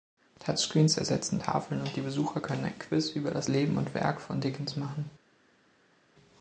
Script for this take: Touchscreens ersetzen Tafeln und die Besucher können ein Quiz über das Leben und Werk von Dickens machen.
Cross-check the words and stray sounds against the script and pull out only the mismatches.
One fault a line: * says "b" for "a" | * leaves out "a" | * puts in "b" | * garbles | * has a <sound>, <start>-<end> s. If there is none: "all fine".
all fine